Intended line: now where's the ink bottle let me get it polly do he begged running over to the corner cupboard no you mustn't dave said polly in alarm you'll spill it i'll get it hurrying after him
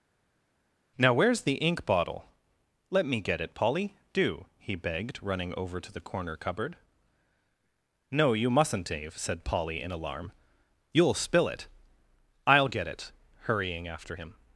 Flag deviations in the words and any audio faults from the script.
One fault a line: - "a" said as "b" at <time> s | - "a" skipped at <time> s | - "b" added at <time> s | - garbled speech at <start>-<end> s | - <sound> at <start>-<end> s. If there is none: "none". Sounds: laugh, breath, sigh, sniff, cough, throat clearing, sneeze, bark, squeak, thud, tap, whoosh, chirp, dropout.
none